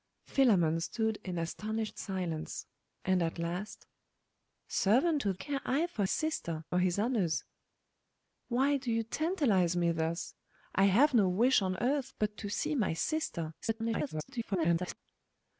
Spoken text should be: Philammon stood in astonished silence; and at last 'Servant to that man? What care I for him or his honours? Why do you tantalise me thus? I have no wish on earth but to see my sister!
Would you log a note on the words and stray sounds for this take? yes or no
yes